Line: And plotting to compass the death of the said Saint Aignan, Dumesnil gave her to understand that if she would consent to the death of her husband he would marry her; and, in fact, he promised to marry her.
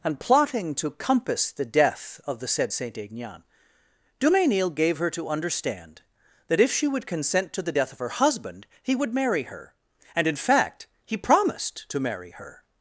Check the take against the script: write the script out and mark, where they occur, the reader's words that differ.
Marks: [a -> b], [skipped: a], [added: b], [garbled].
And plotting to compass the death of the said Saint Aignan, Dumesnil gave her to understand that if she would consent to the death of her husband he would marry her; and, in fact, he promised to marry her.